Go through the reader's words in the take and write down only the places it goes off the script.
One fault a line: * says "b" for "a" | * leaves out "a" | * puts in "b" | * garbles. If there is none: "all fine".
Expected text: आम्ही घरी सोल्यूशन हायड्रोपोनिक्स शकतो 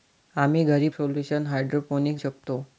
all fine